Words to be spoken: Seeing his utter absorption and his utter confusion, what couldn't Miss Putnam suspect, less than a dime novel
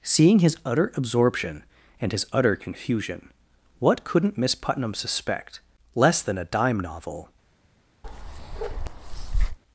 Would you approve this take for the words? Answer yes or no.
yes